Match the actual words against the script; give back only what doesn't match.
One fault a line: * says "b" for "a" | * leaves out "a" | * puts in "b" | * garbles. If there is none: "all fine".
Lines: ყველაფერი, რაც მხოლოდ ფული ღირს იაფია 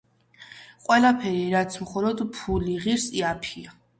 all fine